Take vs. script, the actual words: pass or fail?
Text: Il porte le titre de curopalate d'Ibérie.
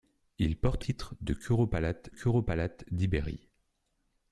fail